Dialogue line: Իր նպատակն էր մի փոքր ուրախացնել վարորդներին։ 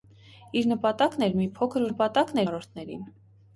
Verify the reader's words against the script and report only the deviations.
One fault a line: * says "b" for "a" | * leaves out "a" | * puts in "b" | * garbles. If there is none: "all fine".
* says "նպատակն" for "ուրախացնել"